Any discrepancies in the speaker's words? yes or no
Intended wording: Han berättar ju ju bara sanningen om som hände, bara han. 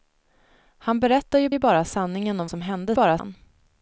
no